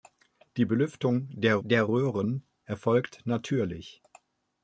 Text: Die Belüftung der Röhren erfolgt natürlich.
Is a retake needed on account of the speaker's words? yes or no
yes